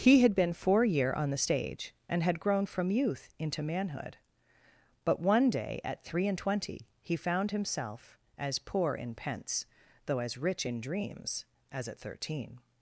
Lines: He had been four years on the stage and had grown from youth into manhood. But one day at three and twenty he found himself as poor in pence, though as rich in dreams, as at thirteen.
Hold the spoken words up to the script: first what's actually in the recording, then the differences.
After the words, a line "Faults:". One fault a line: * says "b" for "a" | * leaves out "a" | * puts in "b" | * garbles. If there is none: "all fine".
He had been four year on the stage and had grown from youth into manhood. But one day at three and twenty he found himself as poor in pence, though as rich in dreams, as at thirteen.
Faults:
* says "year" for "years"